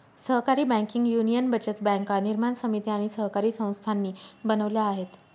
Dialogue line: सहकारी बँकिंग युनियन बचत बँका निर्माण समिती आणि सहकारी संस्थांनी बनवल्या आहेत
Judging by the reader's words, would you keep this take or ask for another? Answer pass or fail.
pass